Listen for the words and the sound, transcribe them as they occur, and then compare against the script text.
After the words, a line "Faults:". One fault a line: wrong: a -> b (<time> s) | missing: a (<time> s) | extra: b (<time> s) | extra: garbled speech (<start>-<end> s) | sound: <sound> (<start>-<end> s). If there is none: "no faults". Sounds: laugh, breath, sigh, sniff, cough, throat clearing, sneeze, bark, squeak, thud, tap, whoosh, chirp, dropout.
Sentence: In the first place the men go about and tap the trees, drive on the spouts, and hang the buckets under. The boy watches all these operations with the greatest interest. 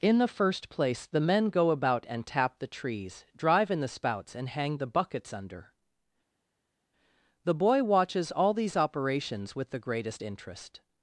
In the first place the men go about and tap the trees, drive in the spouts, and hang the buckets under. The boy watches all these operations with the greatest interest.
Faults:
wrong: on -> in (3.7 s)